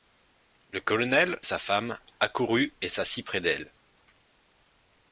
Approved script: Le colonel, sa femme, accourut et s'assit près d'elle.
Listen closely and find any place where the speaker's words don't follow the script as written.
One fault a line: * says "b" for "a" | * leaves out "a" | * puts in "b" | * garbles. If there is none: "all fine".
all fine